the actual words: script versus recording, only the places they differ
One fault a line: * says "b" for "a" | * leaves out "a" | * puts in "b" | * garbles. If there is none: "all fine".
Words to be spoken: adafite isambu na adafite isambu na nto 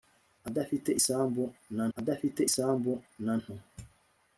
all fine